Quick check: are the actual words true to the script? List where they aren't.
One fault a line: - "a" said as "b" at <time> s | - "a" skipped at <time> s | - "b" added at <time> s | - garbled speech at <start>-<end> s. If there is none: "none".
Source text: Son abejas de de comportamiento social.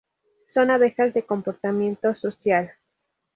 - "de" skipped at 1.2 s